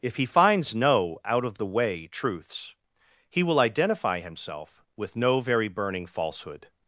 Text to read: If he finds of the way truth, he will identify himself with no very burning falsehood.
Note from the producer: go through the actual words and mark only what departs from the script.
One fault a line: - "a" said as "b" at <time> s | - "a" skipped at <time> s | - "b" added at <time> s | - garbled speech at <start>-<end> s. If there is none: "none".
- "no out" added at 0.7 s
- "truth" said as "truths" at 2.1 s